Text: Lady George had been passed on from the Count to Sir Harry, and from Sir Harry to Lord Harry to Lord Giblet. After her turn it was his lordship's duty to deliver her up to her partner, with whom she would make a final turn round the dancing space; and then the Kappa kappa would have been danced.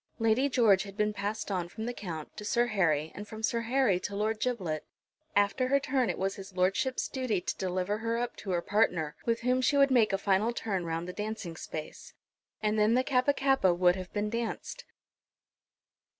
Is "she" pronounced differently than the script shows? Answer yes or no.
no